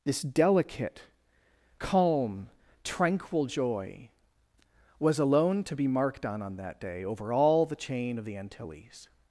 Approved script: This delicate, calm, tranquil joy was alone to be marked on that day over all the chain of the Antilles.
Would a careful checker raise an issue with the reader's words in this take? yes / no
yes